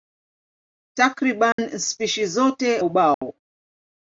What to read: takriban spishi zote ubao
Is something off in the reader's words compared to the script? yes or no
no